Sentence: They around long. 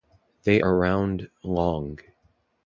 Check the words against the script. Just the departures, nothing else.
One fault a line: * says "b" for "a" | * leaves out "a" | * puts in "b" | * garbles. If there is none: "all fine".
all fine